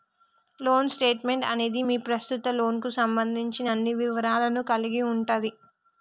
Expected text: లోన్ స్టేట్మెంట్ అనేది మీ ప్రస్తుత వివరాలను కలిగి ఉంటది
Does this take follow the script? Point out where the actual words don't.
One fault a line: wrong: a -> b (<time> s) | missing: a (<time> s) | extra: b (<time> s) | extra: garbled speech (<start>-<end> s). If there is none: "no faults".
extra: లోన్కు సంబంధించిన అన్ని (2.5 s)